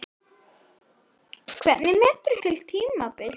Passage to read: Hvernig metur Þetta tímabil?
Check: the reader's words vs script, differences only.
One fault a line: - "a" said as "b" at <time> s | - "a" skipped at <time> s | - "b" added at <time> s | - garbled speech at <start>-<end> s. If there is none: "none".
none